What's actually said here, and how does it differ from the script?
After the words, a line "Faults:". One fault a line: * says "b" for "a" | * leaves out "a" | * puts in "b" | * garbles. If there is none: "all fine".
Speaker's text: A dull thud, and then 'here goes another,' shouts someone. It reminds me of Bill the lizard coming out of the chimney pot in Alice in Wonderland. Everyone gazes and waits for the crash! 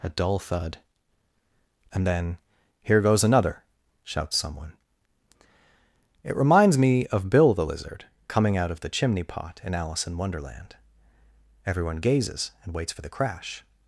A dull thud, and then 'here goes another,' shouts someone. It reminds me of Bill the lizard coming out of the chimney pot in Alice in Wonderland. Everyone gazes and waits for the crash!
Faults:
all fine